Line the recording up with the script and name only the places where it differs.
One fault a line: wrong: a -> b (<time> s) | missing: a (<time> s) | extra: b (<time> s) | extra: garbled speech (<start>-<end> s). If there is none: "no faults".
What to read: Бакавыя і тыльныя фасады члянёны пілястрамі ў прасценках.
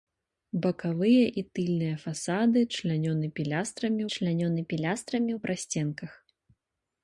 extra: члянёны пілястрамі (4.2 s)